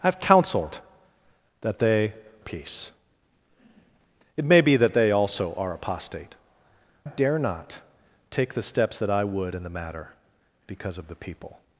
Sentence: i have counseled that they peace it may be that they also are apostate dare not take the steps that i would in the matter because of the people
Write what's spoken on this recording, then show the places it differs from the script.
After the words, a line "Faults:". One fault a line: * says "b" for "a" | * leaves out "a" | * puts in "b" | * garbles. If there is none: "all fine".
i have counseled that they peace it may be that they also are apostate dare not take the steps that i would in the matter because of the people
Faults:
all fine